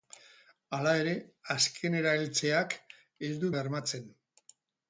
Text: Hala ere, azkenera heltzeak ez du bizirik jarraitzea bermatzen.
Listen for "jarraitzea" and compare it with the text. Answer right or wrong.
wrong